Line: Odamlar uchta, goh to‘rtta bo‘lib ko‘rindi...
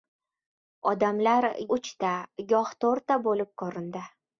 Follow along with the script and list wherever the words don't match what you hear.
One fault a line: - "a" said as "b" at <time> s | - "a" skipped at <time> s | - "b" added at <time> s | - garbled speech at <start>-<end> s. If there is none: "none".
none